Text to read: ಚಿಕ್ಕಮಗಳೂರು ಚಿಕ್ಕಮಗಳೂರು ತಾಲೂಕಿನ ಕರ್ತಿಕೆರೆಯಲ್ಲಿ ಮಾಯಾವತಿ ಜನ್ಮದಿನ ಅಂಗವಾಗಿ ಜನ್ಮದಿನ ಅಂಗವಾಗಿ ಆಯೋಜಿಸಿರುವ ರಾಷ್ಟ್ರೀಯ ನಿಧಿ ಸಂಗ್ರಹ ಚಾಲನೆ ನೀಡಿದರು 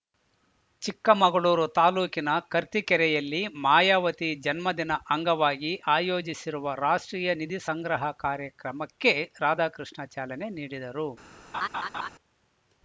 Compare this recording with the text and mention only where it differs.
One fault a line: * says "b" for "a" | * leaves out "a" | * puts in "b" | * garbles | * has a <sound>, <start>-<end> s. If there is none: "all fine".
* leaves out "ಚಿಕ್ಕಮಗಳೂರು"
* leaves out "ಜನ್ಮದಿನ ಅಂಗವಾಗಿ"
* puts in "ಕಾರ್ಯಕ್ರಮಕ್ಕೆ ರಾಧಾಕೃಷ್ಣ"
* has a laugh, 11.5-12.1 s